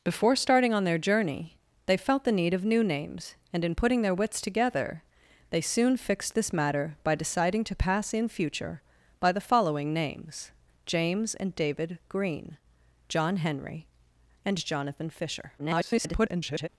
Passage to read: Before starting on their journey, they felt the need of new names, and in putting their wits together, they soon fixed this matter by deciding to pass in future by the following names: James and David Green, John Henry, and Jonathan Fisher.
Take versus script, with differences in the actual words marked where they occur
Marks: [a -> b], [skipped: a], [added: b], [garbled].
Before starting on their journey, they felt the need of new names, and in putting their wits together, they soon fixed this matter by deciding to pass in future by the following names: James and David Green, John Henry, and Jonathan Fisher. [garbled]